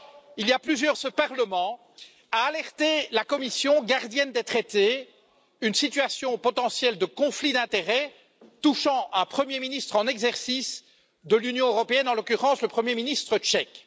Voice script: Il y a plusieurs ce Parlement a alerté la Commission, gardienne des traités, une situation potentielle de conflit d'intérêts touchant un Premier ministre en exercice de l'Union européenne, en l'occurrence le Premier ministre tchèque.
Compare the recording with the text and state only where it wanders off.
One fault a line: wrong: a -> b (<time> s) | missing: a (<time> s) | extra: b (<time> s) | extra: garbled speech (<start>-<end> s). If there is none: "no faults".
no faults